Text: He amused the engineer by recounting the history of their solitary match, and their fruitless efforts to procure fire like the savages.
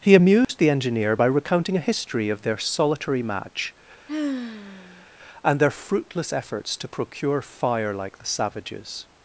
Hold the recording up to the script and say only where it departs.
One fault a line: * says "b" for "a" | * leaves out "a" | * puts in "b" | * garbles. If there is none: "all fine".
* says "a" for "the"